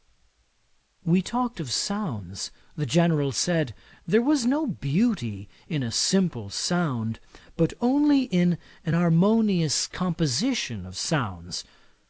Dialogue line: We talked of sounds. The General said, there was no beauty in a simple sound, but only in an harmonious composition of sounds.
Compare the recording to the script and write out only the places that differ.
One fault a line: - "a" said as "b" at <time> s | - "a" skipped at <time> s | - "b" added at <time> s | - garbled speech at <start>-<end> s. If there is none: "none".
none